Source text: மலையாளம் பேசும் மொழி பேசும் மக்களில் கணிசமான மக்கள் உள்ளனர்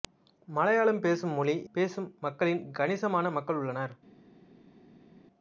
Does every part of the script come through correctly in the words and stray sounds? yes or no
yes